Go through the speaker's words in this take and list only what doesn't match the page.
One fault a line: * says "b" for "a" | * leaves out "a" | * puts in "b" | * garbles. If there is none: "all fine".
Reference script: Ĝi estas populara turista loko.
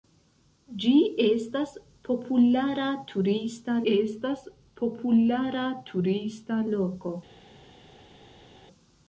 * puts in "estas populara turista"